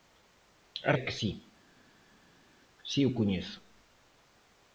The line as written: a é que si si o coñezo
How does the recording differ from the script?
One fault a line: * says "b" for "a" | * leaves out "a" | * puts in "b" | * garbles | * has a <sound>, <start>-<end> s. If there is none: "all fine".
all fine